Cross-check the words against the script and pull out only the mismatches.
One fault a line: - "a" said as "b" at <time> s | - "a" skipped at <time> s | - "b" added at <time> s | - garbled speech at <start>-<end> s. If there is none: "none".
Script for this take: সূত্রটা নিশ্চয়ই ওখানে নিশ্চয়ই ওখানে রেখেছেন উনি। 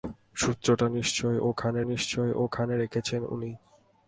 none